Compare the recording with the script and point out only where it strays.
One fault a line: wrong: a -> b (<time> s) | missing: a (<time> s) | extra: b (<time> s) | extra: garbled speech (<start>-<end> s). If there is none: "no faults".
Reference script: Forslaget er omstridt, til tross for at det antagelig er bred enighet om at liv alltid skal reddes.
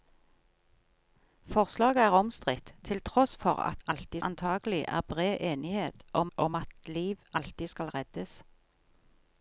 wrong: det -> alltid (3.9 s)
extra: om (6.4 s)